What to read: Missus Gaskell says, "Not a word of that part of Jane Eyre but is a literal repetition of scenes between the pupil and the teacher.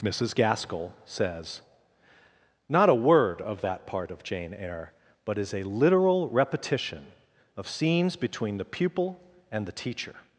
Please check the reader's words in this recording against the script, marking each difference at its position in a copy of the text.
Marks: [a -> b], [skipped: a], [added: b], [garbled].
Missus Gaskell says, "Not a word of that part of Jane Eyre but is a literal repetition of scenes between the pupil and the teacher.